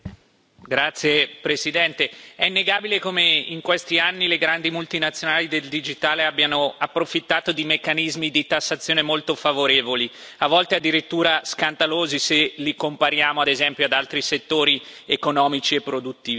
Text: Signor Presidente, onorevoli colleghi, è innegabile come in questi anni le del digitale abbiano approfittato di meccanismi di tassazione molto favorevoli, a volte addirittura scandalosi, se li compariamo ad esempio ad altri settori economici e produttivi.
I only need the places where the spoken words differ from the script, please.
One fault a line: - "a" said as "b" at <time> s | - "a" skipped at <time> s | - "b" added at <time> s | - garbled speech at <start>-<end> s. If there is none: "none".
- "grandi multinazionali" added at 4.4 s